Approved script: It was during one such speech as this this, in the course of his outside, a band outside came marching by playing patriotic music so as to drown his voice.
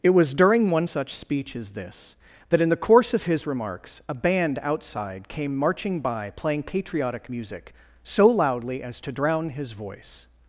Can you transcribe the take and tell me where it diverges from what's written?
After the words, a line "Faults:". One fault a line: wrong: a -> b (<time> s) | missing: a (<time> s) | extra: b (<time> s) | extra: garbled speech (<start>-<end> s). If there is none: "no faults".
It was during one such speech as this that, in the course of his remarks, a band outside came marching by playing patriotic music so loudly as to drown his voice.
Faults:
wrong: this -> that (2.5 s)
wrong: outside -> remarks (3.5 s)
extra: loudly (8.3 s)